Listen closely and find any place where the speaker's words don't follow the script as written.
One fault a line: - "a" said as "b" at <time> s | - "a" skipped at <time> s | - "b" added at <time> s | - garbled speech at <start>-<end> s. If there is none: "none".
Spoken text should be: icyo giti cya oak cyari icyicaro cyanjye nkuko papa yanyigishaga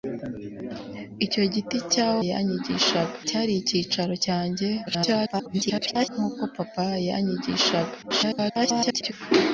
- "oak" said as "yanyigishaga" at 2.3 s
- garbled speech at 4.9-6.1 s
- garbled speech at 8.0-9.1 s